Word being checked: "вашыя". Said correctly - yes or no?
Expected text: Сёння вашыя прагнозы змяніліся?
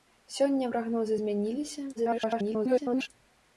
no